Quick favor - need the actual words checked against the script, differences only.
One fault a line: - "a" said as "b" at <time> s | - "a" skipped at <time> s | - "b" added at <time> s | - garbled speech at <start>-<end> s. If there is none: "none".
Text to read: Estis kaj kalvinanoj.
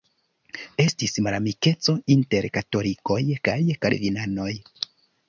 - "malamikeco inter katolikoj" added at 1.3 s